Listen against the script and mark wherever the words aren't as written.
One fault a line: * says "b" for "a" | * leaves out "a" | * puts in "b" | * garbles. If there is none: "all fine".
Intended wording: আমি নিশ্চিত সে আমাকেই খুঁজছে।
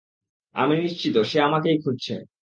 all fine